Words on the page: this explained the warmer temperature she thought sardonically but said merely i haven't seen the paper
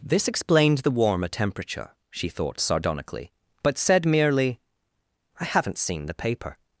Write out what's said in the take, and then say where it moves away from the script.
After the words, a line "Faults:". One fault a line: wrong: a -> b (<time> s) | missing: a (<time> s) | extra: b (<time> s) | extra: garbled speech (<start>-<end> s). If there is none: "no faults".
this explained the warmer temperature she thought sardonically but said merely i haven't seen the paper
Faults:
no faults